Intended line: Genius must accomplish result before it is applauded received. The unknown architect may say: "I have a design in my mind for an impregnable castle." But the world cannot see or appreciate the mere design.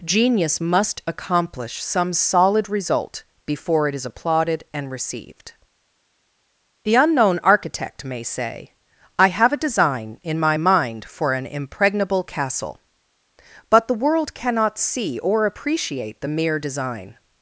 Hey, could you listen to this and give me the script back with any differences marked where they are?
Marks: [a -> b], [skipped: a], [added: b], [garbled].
Genius must accomplish [added: some solid] result before it is applauded [added: and] received. The unknown architect may say: "I have a design in my mind for an impregnable castle." But the world cannot see or appreciate the mere design.